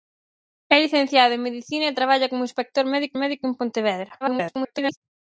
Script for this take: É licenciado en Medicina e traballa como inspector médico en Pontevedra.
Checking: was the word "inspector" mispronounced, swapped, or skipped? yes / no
no